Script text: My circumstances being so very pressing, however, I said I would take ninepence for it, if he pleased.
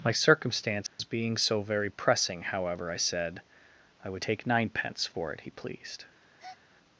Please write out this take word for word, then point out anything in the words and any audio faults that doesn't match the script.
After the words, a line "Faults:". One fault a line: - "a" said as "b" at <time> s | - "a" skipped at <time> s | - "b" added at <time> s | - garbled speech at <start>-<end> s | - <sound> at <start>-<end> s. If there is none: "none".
My circumstances being so very pressing, however, I said I would take ninepence for it, he pleased.
Faults:
- dropout at 0.9-1.0 s
- "if" skipped at 5.4 s
- breath at 6.4-6.6 s